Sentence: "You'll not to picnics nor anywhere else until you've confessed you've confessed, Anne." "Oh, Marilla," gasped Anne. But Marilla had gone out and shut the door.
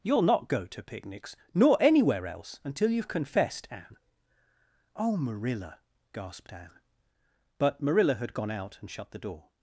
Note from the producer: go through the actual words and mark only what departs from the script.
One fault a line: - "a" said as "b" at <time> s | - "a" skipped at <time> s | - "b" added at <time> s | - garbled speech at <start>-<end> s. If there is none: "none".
- "go" added at 0.5 s
- "you've confessed" skipped at 3.7 s